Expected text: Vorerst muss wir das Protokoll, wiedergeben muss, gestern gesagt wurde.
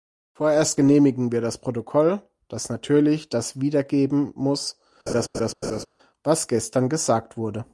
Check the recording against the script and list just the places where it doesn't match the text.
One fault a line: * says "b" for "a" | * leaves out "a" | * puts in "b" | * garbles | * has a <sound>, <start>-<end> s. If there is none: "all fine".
* says "genehmigen" for "muss"
* puts in "das natürlich das"
* has a laugh, 5.1-5.9 s
* puts in "was"